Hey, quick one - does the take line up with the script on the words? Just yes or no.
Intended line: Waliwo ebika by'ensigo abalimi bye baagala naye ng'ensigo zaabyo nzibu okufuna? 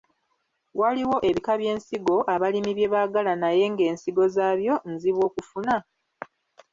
yes